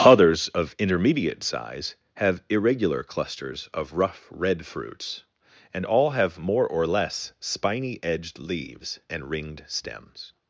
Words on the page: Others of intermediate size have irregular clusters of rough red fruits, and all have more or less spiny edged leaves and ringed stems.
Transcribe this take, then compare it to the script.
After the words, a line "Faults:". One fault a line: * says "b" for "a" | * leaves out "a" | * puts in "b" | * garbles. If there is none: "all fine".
Others of intermediate size have irregular clusters of rough red fruits, and all have more or less spiny edged leaves and ringed stems.
Faults:
all fine